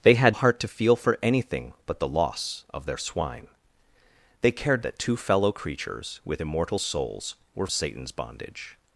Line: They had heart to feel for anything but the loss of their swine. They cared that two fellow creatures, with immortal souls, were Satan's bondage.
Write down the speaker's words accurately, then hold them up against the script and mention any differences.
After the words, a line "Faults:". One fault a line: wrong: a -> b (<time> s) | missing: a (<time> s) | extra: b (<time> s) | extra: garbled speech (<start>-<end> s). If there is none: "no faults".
They had heart to feel for anything but the loss of their swine. They cared that two fellow creatures, with immortal souls, were Satan's bondage.
Faults:
no faults